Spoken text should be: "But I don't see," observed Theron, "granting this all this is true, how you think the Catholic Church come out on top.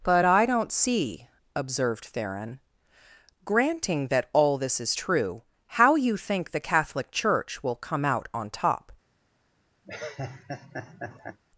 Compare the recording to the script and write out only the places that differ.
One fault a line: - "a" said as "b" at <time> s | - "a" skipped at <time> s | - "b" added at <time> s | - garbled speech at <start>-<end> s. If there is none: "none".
- "this" said as "that" at 4.1 s
- "will" added at 7.6 s